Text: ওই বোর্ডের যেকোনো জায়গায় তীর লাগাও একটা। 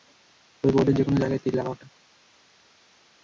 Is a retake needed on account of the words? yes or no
no